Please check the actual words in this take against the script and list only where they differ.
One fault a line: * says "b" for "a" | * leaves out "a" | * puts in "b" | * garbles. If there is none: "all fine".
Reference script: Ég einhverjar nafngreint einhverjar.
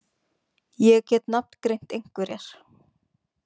* says "get" for "einhverjar"